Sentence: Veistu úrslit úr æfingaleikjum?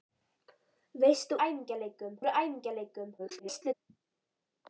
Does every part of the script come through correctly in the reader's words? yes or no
no